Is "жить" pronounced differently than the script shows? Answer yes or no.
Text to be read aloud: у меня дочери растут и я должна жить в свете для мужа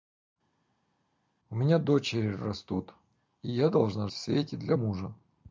yes